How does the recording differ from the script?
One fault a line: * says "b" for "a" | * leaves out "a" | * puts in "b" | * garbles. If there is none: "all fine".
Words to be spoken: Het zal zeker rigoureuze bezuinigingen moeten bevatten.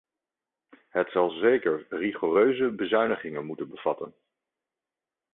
all fine